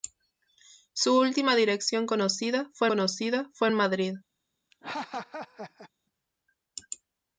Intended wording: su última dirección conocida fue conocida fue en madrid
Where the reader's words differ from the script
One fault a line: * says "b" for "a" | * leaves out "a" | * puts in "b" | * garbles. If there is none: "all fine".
all fine